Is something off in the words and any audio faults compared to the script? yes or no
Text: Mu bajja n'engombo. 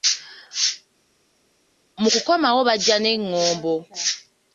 yes